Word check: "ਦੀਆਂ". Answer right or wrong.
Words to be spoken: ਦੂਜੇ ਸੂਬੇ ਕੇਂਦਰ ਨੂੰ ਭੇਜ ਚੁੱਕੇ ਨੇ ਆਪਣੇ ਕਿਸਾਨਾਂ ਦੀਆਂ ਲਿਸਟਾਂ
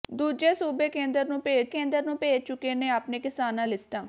wrong